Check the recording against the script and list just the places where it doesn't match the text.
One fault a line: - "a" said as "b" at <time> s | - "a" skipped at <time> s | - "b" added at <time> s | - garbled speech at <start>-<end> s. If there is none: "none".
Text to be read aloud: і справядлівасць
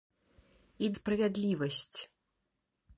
none